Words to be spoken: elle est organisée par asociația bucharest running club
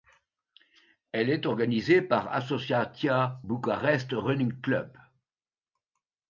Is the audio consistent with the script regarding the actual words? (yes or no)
yes